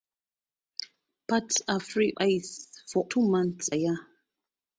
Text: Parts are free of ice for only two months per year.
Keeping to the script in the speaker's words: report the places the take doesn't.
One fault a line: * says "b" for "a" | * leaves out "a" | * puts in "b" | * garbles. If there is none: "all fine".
* leaves out "of"
* leaves out "only"
* leaves out "per"